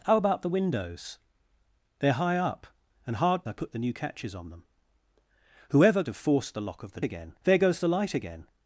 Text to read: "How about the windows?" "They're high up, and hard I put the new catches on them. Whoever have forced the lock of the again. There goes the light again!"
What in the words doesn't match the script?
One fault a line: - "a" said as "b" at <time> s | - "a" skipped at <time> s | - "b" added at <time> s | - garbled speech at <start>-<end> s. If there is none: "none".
none